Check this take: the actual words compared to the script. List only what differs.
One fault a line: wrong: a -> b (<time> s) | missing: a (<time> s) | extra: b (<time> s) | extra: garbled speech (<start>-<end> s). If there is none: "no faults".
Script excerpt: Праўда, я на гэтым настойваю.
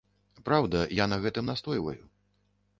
no faults